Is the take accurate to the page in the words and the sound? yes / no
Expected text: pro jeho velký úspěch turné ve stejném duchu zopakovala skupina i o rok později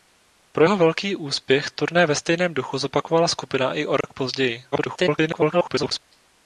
no